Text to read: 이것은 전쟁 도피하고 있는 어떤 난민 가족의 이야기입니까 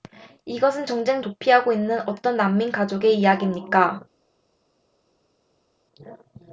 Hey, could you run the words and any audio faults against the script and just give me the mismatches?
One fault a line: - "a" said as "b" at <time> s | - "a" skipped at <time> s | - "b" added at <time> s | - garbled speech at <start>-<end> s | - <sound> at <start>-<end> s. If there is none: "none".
none